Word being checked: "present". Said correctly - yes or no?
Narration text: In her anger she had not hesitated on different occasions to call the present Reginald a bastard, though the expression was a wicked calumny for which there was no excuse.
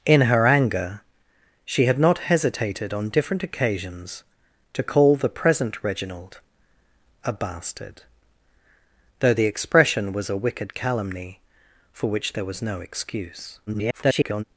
yes